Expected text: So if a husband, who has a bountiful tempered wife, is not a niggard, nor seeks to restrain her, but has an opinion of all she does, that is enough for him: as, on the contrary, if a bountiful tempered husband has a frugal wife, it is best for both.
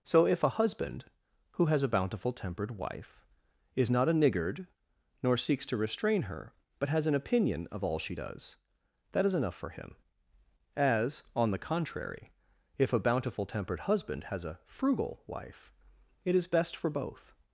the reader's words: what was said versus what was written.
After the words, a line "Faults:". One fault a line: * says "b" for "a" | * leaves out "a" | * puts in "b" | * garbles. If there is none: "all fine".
So if a husband, who has a bountiful tempered wife, is not a niggard, nor seeks to restrain her, but has an opinion of all she does, that is enough for him: as, on the contrary, if a bountiful tempered husband has a frugal wife, it is best for both.
Faults:
all fine